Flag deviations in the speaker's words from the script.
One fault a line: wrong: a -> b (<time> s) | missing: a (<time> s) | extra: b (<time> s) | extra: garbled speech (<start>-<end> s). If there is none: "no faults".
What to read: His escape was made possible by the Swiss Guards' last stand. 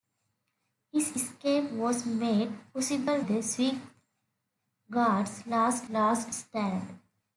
missing: by (3.2 s)
extra: last (5.9 s)